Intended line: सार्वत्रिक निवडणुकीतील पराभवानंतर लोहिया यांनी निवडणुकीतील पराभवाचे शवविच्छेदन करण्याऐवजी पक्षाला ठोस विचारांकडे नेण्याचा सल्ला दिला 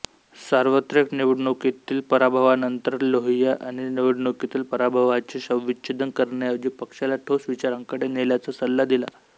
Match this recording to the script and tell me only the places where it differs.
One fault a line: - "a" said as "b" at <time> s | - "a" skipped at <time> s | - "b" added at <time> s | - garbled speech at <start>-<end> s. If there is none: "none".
none